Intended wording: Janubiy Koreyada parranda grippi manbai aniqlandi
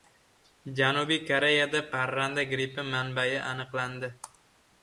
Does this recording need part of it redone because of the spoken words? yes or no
no